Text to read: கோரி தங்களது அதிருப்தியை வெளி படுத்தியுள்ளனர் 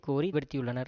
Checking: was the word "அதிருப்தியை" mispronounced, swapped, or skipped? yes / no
yes